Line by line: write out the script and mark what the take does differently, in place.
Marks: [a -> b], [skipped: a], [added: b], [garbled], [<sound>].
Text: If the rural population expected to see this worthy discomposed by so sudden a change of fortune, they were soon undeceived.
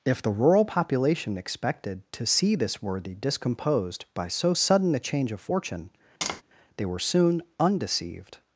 If the rural population expected to see this worthy discomposed by so sudden a change of fortune, [tap] they were soon undeceived.